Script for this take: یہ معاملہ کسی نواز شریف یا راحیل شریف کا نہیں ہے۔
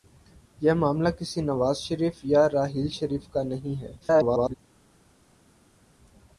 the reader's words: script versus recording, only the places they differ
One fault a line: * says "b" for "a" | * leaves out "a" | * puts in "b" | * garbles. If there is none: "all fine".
* garbles